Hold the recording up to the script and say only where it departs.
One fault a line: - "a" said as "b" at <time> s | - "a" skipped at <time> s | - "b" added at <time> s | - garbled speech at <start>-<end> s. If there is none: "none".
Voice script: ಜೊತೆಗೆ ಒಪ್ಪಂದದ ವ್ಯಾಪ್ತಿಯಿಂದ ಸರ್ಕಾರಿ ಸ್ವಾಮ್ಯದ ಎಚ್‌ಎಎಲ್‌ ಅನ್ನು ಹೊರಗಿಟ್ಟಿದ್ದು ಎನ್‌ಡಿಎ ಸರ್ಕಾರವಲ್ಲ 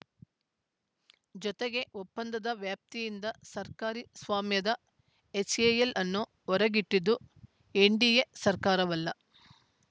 none